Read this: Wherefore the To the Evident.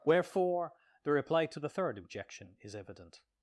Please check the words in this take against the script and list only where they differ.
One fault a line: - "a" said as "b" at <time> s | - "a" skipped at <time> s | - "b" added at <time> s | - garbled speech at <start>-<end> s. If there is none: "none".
- "Reply" added at 1.1 s
- "Third Objection is" added at 1.7 s